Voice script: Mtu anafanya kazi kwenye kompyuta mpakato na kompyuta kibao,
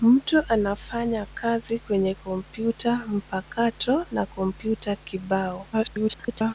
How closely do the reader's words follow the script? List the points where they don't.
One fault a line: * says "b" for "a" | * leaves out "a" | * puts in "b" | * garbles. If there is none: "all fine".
* garbles